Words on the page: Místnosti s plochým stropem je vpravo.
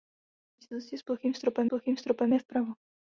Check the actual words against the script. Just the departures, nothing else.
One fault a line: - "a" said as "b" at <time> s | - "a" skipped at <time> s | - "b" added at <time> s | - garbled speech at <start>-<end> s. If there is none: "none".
- "plochým stropem" added at 1.7 s